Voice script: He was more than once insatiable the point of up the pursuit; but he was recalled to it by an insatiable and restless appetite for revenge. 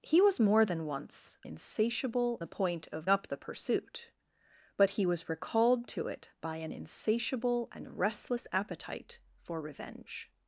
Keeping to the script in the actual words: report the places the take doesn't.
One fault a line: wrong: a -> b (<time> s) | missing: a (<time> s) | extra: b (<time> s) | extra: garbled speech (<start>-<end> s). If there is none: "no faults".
no faults